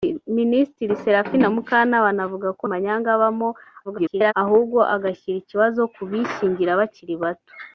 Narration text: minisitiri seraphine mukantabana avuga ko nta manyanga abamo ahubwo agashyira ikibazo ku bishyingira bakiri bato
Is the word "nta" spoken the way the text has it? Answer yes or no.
no